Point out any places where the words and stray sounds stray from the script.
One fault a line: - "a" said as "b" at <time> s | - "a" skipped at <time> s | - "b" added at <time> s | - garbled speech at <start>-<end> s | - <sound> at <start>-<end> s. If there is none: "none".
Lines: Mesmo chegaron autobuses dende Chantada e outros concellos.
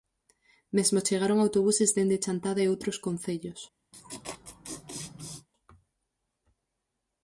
- laugh at 3.9-5.5 s